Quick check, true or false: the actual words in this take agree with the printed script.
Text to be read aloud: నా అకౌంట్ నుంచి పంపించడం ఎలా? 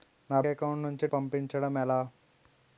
true